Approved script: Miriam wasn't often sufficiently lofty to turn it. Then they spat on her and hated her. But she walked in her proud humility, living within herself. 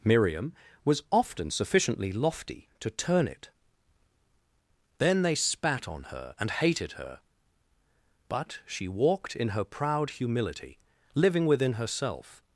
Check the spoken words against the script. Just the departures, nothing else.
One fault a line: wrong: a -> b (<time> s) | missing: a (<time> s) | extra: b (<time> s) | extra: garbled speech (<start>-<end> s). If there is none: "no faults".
wrong: wasn't -> was (0.8 s)